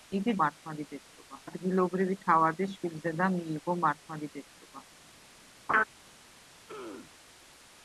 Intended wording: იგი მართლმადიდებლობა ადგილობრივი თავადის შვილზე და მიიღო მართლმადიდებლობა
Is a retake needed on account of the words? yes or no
no